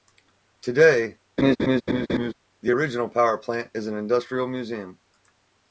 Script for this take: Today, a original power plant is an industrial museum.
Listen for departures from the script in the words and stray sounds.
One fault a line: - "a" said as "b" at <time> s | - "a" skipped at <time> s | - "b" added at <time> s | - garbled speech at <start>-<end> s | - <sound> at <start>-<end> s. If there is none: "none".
- laugh at 1.4-2.3 s
- "a" said as "the" at 2.6 s